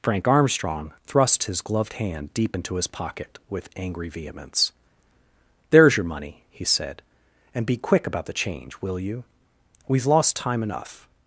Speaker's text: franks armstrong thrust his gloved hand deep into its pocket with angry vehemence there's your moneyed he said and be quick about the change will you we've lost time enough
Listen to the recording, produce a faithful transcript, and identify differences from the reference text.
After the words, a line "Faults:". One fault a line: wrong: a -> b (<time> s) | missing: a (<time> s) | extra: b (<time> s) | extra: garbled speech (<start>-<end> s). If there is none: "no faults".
frank armstrong thrust his gloved hand deep into his pocket with angry vehemence there's your money he said and be quick about the change will you we've lost time enough
Faults:
wrong: franks -> frank (0.0 s)
wrong: its -> his (2.8 s)
wrong: moneyed -> money (6.0 s)